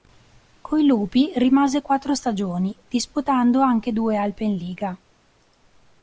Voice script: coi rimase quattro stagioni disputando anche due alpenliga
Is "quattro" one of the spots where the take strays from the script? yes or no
no